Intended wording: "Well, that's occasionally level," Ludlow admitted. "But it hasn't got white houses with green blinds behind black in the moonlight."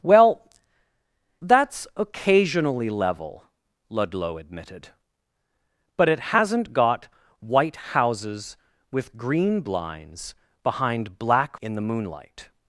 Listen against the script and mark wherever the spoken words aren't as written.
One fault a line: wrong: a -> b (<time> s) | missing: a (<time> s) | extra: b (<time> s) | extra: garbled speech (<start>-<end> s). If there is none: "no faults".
no faults